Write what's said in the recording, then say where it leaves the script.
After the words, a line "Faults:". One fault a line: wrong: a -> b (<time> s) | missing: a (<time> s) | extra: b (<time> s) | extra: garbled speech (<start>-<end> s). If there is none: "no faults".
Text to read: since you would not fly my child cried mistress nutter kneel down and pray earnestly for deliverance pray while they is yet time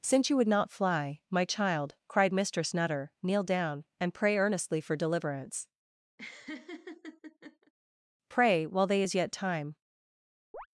since you would not fly my child cried mistress nutter kneel down and pray earnestly for deliverance pray while they is yet time
Faults:
no faults